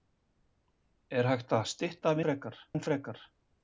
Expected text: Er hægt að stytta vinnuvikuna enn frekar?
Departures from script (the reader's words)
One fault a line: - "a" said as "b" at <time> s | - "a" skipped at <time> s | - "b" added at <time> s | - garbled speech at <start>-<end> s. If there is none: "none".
- "vinnuvikuna" said as "frekar" at 2.3 s